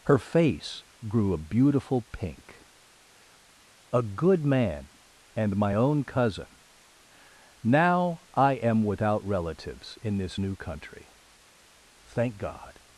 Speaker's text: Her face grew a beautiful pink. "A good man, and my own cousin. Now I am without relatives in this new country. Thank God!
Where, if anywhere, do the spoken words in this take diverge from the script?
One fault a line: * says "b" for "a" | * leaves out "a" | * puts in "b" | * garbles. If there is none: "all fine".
all fine